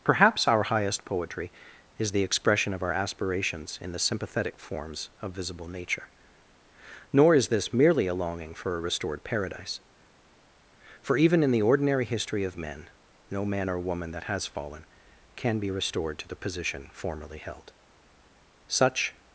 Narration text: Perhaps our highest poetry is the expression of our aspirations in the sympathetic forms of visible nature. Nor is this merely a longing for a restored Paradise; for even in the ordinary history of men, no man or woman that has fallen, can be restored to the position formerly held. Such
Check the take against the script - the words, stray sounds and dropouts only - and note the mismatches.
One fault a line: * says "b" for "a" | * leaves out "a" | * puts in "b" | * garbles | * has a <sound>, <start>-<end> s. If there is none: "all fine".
all fine